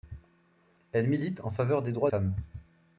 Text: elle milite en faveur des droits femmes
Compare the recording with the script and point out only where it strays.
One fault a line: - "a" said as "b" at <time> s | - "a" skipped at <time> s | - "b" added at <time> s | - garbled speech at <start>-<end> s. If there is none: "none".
none